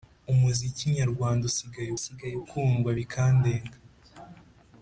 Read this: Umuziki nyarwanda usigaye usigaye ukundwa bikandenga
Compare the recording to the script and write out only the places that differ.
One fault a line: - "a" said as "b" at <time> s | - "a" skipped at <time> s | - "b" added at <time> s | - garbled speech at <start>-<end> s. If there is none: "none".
none